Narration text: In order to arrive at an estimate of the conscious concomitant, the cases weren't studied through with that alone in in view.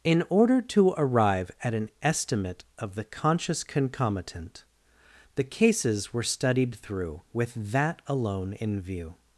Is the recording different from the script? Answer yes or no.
yes